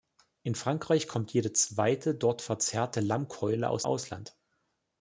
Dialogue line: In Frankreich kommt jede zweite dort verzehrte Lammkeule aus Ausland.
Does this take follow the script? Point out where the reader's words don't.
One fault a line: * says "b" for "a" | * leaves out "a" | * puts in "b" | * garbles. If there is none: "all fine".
all fine